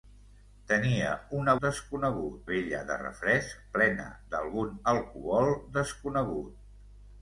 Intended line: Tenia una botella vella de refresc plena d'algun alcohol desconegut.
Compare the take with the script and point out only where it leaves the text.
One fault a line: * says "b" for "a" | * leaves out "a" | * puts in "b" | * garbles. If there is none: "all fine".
* says "desconegut" for "botella"